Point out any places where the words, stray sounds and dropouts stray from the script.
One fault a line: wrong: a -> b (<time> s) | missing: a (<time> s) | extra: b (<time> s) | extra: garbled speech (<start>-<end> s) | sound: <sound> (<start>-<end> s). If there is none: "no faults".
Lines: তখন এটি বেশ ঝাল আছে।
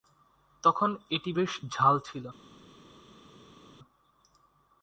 wrong: আছে -> ছিল (2.0 s)